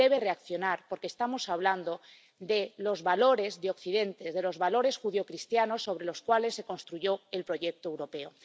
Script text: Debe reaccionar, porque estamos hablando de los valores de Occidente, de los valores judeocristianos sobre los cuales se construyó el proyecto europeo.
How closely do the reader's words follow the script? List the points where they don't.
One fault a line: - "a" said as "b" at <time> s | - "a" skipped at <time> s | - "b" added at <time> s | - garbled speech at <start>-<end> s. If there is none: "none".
none